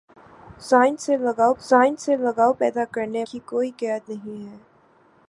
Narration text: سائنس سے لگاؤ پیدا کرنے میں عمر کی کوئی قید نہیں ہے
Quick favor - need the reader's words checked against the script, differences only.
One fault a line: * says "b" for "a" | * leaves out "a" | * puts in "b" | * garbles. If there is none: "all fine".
* puts in "سائنس سے لگاؤ"
* leaves out "میں عمر"